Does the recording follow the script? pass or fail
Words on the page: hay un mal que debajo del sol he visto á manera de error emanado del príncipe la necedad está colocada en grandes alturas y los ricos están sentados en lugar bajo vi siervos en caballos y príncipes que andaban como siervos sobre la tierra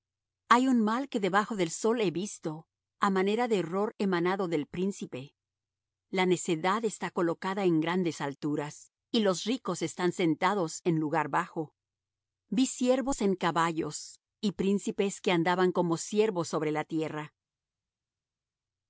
pass